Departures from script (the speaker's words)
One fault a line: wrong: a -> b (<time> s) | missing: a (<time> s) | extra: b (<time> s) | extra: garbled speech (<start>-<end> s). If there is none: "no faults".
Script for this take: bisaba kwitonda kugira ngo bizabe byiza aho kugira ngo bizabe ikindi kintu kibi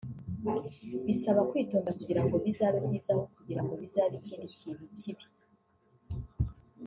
no faults